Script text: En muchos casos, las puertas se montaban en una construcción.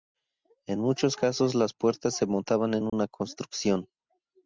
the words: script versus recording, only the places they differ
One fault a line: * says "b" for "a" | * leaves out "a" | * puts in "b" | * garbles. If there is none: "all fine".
all fine